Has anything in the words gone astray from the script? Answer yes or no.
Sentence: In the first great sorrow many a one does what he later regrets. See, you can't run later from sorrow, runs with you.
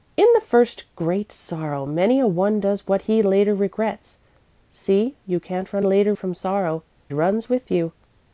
no